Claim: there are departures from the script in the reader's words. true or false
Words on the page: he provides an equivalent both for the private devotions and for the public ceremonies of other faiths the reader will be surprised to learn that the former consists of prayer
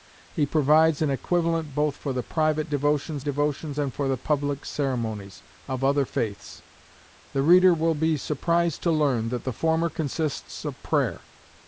true